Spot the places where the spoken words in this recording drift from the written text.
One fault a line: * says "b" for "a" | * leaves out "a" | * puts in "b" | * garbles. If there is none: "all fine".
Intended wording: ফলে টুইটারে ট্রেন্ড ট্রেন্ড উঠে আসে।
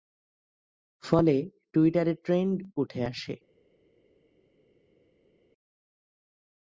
* leaves out "ট্রেন্ড"